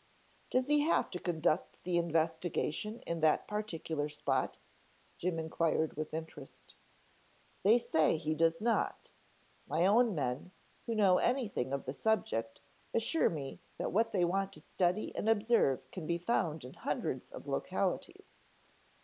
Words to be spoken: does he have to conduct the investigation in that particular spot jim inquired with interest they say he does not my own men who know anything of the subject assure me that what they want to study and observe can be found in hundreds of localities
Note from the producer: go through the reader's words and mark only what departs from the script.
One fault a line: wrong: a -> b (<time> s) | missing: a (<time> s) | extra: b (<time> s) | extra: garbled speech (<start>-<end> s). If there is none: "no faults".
no faults